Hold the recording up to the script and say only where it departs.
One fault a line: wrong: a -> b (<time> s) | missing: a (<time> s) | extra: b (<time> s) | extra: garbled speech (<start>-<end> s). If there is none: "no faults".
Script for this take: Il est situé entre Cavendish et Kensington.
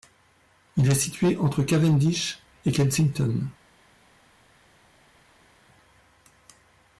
no faults